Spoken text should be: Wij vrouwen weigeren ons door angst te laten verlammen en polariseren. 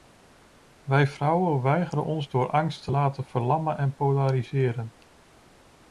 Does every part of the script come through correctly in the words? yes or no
yes